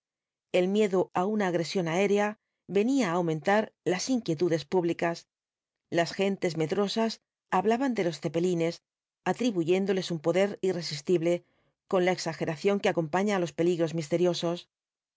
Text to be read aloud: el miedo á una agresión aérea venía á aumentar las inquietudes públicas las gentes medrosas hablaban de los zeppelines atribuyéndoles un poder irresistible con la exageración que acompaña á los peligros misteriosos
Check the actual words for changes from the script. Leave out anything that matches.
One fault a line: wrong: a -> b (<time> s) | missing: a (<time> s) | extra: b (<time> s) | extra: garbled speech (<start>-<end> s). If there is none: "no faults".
no faults